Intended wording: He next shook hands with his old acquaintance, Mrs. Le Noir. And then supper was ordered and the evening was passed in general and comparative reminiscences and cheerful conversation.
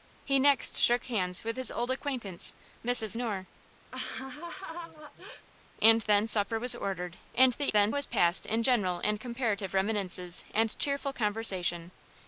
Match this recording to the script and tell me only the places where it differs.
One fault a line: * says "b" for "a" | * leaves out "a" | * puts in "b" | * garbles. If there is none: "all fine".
* leaves out "Le"
* says "then" for "evening"